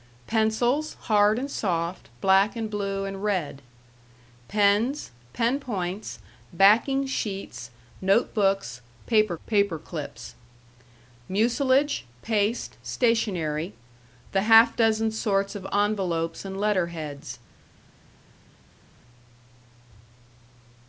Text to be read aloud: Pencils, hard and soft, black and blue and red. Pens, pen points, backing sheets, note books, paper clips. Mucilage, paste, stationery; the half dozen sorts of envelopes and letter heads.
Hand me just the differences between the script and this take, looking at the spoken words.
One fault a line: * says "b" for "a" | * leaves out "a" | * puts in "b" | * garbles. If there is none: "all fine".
* puts in "paper"